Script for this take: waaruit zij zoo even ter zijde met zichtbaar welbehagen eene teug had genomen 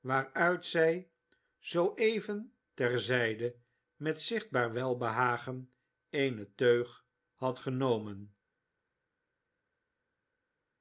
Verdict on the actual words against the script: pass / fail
pass